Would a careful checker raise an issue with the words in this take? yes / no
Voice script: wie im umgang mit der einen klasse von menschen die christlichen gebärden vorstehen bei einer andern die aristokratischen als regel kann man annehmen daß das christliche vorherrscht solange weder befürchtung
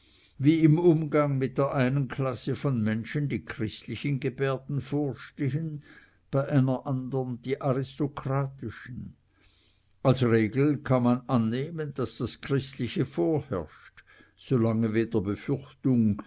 no